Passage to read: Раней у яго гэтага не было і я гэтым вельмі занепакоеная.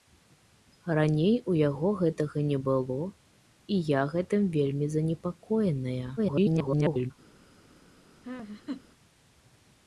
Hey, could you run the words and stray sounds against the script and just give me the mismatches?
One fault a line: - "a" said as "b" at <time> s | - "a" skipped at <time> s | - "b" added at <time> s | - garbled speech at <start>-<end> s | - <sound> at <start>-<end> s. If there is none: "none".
- garbled speech at 6.2-7.1 s
- laugh at 8.2-8.8 s